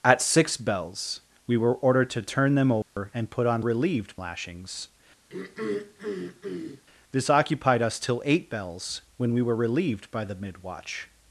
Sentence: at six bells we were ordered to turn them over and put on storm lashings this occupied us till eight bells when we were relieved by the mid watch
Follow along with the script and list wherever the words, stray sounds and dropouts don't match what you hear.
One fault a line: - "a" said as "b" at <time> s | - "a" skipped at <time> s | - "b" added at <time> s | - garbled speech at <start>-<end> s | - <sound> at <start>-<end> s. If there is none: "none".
- dropout at 2.8-3.0 s
- "storm" said as "relieved" at 3.6 s
- throat clearing at 5.3-6.8 s